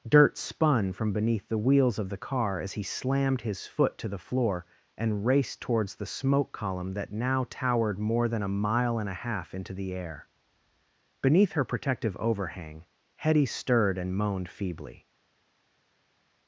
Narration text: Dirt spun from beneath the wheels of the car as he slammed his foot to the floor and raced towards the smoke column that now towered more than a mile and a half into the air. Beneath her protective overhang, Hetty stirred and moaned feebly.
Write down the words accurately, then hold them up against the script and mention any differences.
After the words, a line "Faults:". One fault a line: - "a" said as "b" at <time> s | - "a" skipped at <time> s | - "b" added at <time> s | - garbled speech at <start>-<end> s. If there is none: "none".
Dirt spun from beneath the wheels of the car as he slammed his foot to the floor and raced towards the smoke column that now towered more than a mile and a half into the air. Beneath her protective overhang, Hetty stirred and moaned feebly.
Faults:
none